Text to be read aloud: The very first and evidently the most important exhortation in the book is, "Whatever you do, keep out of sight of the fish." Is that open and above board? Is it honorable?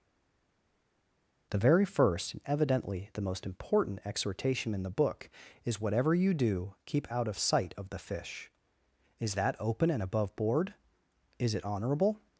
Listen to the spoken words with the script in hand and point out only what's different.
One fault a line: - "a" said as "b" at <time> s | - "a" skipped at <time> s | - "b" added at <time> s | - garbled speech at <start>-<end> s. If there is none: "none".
none